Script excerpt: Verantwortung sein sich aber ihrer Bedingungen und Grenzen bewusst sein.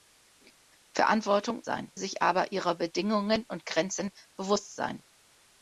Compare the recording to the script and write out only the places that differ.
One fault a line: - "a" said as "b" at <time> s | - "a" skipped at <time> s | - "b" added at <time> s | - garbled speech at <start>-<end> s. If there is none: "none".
none